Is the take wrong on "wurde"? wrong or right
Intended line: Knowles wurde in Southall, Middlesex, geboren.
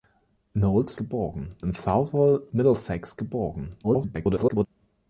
wrong